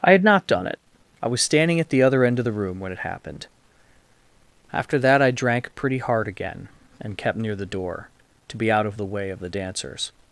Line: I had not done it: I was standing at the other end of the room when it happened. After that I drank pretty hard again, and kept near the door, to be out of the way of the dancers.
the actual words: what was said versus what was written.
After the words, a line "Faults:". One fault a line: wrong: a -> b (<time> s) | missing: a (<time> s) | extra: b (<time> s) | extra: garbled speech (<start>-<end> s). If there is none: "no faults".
I had not done it: I was standing at the other end of the room when it happened. After that I drank pretty hard again, and kept near the door, to be out of the way of the dancers.
Faults:
no faults